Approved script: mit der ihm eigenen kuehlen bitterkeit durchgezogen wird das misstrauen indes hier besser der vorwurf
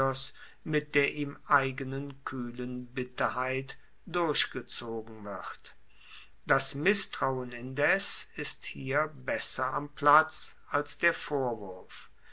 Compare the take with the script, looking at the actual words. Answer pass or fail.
fail